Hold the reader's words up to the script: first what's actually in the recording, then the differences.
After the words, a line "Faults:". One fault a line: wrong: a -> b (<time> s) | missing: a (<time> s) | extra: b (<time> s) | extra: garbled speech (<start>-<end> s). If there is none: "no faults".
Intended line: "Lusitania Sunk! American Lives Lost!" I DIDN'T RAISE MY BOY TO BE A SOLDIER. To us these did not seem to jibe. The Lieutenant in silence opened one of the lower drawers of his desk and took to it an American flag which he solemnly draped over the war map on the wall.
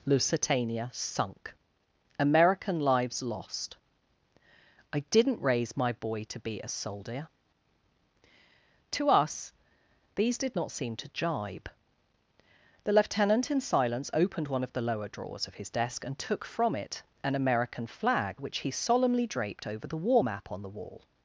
"Lusitania Sunk! American Lives Lost!" I DIDN'T RAISE MY BOY TO BE A SOLDIER. To us these did not seem to jibe. The Lieutenant in silence opened one of the lower drawers of his desk and took from it an American flag which he solemnly draped over the war map on the wall.
Faults:
wrong: to -> from (16.5 s)